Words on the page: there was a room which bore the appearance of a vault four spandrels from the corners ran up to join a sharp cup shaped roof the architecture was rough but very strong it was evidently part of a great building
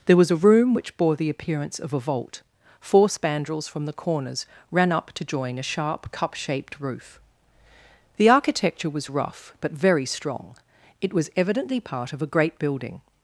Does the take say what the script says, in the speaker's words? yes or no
yes